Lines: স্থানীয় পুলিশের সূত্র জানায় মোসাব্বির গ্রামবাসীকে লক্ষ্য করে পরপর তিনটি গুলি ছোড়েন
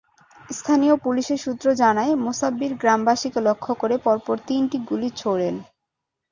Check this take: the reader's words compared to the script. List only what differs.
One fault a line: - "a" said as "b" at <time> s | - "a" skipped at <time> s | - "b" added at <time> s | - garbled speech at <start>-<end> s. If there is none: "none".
none